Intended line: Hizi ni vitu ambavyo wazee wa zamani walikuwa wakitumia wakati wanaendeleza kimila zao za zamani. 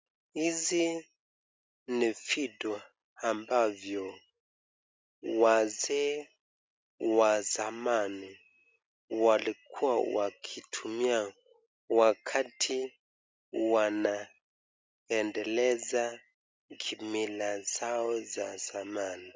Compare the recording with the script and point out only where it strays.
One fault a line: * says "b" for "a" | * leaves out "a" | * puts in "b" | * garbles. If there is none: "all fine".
all fine